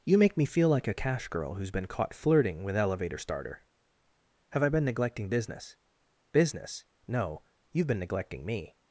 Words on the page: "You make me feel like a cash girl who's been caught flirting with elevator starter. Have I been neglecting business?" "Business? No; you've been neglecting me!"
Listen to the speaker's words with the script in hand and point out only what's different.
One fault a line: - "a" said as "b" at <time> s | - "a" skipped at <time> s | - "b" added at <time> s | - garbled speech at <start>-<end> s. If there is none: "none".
none